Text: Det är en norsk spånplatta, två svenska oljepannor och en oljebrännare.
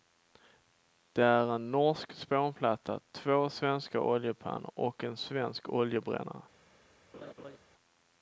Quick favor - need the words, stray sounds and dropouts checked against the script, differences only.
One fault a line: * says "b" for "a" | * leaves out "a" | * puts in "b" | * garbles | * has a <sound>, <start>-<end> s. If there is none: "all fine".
* puts in "svensk"
* has a laugh, 7.1-7.6 s